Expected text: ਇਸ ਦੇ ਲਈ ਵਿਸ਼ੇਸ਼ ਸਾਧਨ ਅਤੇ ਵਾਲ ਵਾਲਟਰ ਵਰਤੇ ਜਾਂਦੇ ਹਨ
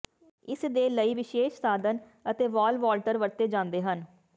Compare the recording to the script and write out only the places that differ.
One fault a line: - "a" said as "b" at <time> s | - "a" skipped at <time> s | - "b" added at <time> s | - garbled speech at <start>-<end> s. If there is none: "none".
none